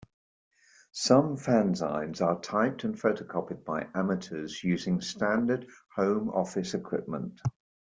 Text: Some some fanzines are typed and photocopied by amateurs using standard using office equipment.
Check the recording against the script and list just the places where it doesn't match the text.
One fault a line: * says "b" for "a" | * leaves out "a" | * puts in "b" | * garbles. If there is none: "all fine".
* leaves out "some"
* says "home" for "using"